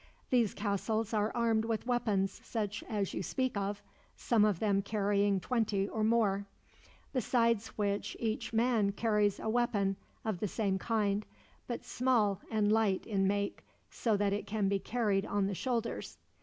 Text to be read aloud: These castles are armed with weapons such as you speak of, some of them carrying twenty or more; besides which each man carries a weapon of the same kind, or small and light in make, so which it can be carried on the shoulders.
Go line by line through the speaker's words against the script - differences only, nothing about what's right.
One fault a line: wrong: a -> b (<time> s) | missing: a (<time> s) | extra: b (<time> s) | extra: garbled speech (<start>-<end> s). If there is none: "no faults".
wrong: or -> but (11.7 s)
wrong: which -> that (14.2 s)